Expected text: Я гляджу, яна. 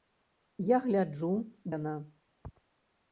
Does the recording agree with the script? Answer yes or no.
yes